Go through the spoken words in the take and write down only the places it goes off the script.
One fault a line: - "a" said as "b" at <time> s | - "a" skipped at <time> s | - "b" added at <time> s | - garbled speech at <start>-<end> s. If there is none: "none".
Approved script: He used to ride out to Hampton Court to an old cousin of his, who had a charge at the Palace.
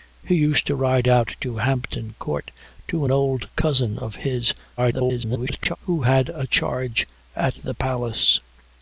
- garbled speech at 4.8-5.8 s